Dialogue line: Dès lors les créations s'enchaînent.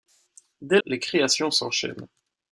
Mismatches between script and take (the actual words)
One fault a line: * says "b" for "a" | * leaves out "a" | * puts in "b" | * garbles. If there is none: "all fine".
* leaves out "lors"